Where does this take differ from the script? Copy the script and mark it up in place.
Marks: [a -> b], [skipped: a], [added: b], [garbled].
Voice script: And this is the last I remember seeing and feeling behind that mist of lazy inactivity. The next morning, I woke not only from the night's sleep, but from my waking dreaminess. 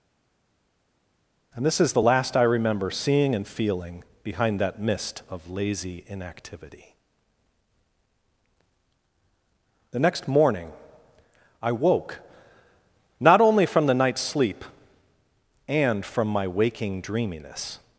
And this is the last I remember seeing and feeling behind that mist of lazy inactivity. The next morning, I woke not only from the night's sleep, [but -> and] from my waking dreaminess.